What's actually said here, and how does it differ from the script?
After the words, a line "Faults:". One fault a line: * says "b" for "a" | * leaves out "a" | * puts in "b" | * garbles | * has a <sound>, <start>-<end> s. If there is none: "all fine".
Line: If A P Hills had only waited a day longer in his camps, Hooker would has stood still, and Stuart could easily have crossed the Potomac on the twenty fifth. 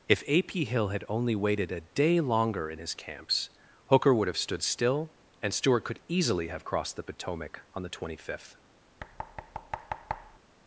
If A P Hill had only waited a day longer in his camps, Hooker would have stood still, and Stuart could easily have crossed the Potomac on the twenty fifth.
Faults:
* says "Hill" for "Hills"
* says "have" for "has"
* has a thud, 9.0-10.4 s